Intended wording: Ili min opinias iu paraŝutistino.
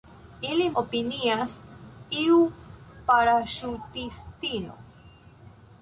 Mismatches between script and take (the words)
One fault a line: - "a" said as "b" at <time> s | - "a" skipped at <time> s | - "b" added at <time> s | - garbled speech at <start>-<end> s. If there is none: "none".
- "min" skipped at 0.6 s